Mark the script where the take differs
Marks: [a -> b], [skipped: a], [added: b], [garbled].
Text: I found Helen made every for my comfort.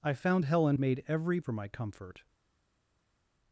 I found Helen made every for my comfort.